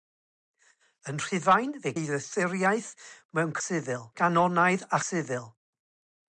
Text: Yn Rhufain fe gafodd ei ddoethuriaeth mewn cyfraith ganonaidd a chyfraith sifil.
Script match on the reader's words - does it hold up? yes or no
no